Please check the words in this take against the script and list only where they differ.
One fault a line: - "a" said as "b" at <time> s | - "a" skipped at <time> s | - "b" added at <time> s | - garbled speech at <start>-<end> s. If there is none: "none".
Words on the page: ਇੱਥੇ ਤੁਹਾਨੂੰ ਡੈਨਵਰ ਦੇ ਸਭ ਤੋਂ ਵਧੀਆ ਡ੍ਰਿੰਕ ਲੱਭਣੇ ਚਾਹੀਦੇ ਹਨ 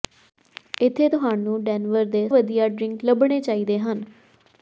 - "ਸਭ ਤੋਂ" skipped at 2.3 s